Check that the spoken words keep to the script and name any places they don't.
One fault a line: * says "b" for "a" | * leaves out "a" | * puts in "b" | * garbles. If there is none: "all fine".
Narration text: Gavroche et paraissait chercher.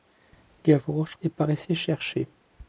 all fine